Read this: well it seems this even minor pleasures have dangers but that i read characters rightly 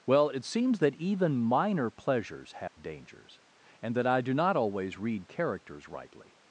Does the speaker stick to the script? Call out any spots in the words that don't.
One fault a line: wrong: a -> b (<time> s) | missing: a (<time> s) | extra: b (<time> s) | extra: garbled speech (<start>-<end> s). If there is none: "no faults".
wrong: this -> that (0.8 s)
wrong: but -> and (3.8 s)
extra: do not always (4.2 s)